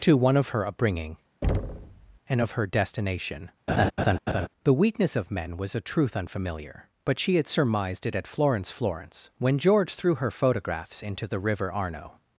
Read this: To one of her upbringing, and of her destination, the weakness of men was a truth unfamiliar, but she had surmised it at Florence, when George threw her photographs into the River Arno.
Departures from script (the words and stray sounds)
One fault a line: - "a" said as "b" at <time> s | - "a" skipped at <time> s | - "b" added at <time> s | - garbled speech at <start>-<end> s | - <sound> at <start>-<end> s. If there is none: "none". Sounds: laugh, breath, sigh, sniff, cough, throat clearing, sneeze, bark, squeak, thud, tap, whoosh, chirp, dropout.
- thud at 1.4-2.2 s
- laugh at 3.7-4.5 s
- "Florence" added at 8.7 s